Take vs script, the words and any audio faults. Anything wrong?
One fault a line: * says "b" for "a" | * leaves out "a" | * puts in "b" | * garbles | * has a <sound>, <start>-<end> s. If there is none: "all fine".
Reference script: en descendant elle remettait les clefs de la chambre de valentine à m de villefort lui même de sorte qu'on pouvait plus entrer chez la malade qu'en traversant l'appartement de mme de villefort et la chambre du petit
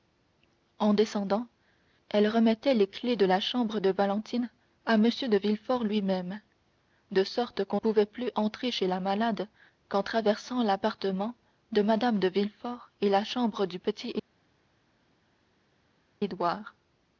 all fine